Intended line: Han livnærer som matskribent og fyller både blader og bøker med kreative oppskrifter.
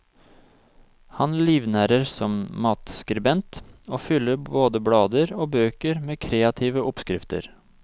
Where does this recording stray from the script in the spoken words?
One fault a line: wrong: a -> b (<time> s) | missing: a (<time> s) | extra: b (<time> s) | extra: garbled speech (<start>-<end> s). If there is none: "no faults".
no faults